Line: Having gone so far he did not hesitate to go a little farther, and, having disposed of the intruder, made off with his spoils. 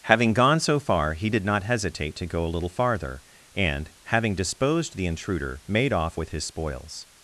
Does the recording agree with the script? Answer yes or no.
no